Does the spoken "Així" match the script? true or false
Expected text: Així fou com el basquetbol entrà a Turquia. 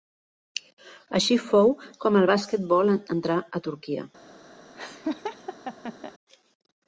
true